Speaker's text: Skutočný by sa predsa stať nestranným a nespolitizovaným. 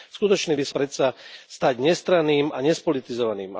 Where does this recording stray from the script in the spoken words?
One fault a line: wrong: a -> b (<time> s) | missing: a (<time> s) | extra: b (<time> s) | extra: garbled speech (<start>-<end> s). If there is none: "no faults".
no faults